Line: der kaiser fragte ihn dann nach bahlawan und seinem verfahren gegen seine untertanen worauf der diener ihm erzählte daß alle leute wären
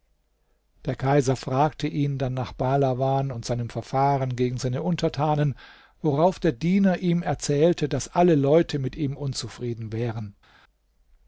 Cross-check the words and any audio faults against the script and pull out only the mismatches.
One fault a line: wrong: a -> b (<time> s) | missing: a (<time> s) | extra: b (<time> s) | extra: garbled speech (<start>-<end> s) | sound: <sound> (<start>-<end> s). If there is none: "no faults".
extra: mit ihm unzufrieden (8.8 s)